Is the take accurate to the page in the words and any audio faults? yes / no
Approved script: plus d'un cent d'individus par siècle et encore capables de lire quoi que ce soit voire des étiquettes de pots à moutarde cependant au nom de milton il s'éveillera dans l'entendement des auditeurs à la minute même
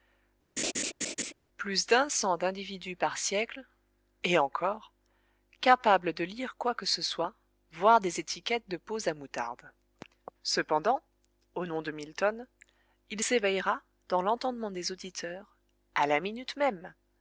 no